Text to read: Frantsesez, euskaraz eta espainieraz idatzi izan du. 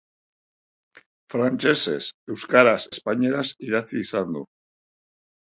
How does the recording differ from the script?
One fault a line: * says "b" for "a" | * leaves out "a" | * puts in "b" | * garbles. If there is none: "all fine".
* leaves out "eta"